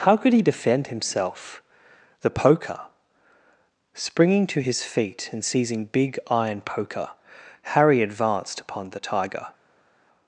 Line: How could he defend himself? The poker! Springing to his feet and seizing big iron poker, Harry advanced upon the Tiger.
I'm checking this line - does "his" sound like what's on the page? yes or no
yes